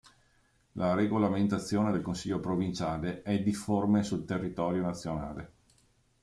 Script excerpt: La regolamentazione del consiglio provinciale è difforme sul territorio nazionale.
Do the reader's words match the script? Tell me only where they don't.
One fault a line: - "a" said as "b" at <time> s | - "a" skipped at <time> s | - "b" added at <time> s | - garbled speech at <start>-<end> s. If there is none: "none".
none